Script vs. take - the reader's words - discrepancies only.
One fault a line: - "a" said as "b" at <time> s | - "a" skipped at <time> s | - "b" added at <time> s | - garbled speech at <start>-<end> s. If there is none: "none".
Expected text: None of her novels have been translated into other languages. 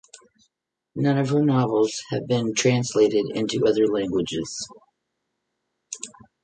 none